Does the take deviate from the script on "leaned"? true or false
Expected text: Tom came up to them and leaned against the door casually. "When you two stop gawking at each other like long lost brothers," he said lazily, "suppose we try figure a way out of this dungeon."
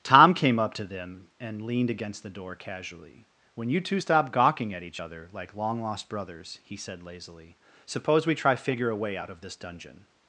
false